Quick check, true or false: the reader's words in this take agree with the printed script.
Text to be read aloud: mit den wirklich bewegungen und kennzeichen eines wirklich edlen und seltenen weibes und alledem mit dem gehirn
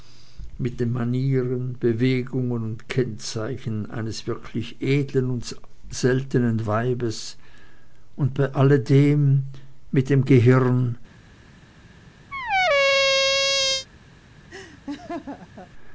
false